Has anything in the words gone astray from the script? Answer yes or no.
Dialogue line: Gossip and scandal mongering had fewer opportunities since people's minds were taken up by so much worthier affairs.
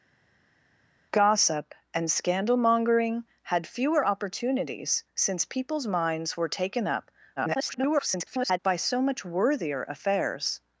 yes